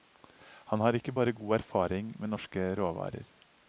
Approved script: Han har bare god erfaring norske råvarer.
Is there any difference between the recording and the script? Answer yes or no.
yes